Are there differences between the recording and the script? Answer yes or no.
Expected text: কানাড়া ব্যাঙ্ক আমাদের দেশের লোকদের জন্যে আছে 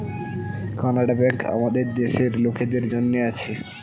no